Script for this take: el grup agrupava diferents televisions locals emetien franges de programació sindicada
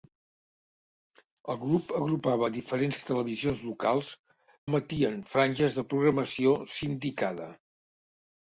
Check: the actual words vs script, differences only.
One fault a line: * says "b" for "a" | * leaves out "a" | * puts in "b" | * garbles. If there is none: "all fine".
all fine